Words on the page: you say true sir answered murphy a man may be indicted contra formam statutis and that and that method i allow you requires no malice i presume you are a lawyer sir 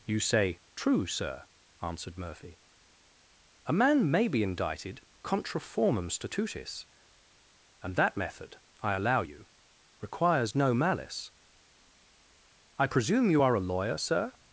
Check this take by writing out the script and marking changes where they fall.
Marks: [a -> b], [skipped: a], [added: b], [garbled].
you say true sir answered murphy a man may be indicted contra formam statutis and that [skipped: and that] method i allow you requires no malice i presume you are a lawyer sir